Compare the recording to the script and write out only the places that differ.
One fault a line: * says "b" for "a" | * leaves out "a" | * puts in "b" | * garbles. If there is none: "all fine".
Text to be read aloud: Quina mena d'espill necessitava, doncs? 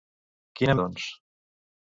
* leaves out "mena d'espill necessitava"